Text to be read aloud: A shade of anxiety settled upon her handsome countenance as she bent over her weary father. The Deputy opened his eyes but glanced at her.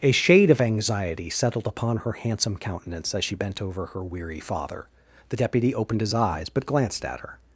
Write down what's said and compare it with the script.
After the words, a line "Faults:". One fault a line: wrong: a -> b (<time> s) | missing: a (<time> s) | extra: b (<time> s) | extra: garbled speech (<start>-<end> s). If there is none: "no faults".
A shade of anxiety settled upon her handsome countenance as she bent over her weary father. The Deputy opened his eyes but glanced at her.
Faults:
no faults